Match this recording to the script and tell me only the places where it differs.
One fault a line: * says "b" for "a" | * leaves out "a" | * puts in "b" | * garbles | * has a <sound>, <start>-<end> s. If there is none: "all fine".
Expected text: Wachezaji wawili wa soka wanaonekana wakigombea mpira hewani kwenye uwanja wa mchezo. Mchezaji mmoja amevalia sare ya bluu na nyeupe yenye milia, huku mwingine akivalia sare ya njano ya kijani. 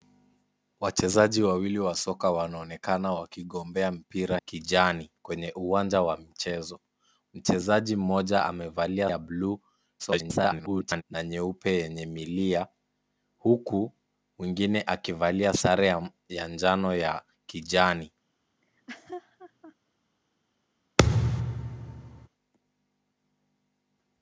* says "kijani" for "hewani"
* leaves out "sare"
* garbles
* has a laugh, 18.6-19.7 s
* has a thud, 21.0-22.3 s